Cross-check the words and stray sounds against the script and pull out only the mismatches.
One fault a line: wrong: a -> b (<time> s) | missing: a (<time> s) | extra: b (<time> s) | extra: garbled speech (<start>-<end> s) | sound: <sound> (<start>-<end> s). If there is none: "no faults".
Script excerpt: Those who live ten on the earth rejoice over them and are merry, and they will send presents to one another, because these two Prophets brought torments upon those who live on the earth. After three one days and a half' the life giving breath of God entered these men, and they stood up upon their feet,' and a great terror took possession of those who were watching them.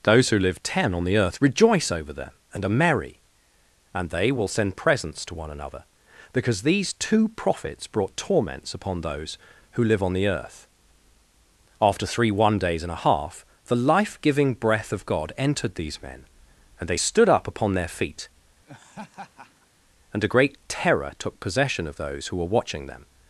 sound: laugh (18.7-19.7 s)